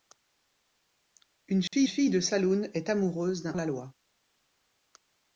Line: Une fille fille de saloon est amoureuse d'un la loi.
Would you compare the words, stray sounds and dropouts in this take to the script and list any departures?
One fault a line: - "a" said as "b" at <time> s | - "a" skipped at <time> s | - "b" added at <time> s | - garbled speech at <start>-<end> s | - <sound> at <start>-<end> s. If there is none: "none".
- dropout at 1.7-1.7 s